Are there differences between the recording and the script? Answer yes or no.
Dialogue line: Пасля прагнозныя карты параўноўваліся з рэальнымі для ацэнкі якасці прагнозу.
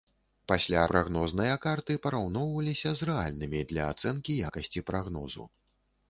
no